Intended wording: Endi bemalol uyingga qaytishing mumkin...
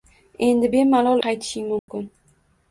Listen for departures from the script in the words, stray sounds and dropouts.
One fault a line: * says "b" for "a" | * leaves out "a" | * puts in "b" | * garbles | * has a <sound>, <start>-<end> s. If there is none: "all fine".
* leaves out "uyingga"
* has a dropout, 1.8-1.9 s